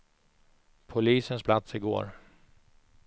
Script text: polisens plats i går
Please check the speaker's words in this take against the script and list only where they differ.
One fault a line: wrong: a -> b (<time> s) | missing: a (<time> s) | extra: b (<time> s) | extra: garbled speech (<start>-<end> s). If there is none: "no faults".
no faults